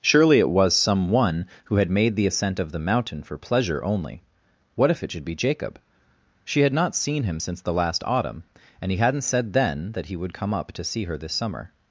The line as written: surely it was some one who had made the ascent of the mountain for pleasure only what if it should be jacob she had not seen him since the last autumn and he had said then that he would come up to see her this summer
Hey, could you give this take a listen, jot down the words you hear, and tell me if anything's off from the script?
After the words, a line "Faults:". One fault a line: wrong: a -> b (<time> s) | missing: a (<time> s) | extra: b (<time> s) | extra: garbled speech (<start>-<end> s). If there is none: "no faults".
surely it was some one who had made the ascent of the mountain for pleasure only what if it should be jacob she had not seen him since the last autumn and he hadn't said then that he would come up to see her this summer
Faults:
wrong: had -> hadn't (9.0 s)